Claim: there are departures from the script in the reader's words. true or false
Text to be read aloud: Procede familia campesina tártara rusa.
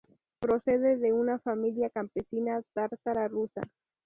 true